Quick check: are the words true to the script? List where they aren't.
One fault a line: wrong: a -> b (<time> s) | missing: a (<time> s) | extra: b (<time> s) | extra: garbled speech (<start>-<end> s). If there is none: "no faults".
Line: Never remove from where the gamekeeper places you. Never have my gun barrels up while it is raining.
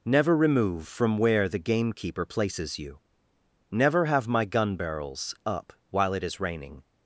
no faults